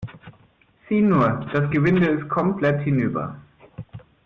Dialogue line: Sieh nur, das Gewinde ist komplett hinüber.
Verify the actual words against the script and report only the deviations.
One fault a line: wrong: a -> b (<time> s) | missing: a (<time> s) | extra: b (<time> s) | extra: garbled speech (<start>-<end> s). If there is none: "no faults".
no faults